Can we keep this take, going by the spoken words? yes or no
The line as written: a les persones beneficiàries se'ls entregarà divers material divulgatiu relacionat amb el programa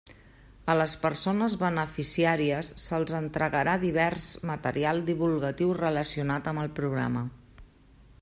yes